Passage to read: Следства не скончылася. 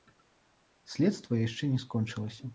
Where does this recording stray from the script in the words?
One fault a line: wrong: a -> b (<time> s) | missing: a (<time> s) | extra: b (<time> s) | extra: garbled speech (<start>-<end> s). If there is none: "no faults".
extra: яшчэ (1.4 s)